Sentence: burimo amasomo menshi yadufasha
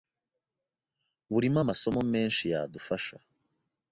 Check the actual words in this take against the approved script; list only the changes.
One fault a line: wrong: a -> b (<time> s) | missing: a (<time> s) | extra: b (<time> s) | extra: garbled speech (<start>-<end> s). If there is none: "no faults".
no faults